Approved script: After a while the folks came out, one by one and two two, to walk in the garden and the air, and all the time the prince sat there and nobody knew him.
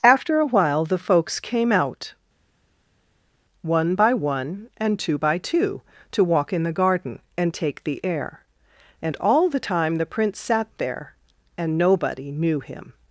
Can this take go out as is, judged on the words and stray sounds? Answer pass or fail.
fail